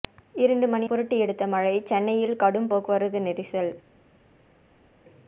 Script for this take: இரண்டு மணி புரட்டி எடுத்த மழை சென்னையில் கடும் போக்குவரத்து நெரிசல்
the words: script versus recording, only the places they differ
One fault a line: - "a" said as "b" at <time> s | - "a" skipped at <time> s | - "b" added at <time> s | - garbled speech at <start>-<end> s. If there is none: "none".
none